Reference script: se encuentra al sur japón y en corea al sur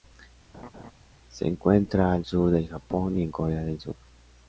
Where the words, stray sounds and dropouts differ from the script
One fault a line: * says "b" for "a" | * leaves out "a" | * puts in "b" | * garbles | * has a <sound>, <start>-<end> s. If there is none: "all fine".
* has a laugh, 0.5-0.9 s
* puts in "del"
* says "del" for "al"